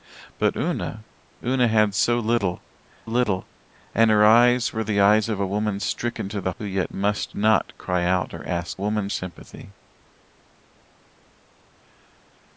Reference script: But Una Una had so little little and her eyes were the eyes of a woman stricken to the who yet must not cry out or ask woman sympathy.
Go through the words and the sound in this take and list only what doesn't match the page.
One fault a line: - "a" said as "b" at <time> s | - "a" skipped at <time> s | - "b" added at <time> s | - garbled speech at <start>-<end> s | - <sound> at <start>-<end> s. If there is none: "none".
none